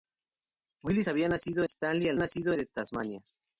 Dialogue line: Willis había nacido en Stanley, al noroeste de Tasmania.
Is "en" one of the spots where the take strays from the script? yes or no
yes